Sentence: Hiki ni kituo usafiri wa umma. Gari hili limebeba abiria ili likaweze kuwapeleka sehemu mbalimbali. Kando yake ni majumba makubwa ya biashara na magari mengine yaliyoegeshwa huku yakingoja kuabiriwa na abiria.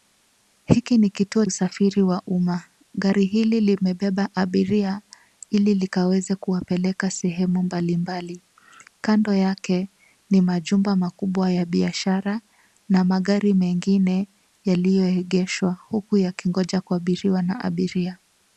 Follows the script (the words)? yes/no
yes